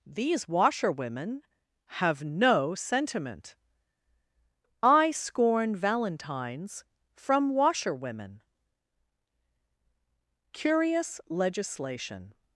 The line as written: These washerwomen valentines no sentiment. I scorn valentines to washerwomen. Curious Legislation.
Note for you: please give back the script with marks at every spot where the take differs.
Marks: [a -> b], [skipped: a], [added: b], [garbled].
These washerwomen [valentines -> have] no sentiment. I scorn valentines [to -> from] washerwomen. Curious Legislation.